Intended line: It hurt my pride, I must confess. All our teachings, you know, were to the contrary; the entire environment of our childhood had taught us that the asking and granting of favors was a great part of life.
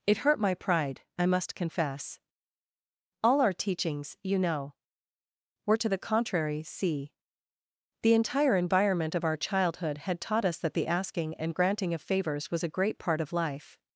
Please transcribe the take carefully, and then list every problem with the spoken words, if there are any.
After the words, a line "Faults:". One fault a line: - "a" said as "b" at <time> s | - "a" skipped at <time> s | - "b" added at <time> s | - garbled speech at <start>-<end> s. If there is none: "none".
It hurt my pride, I must confess. All our teachings, you know, were to the contrary; see the entire environment of our childhood had taught us that the asking and granting of favors was a great part of life.
Faults:
- "see" added at 6.6 s